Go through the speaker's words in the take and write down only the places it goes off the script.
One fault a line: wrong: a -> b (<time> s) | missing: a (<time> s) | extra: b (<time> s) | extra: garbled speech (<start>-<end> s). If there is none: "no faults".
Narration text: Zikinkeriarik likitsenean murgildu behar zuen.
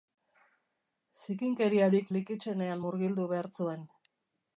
no faults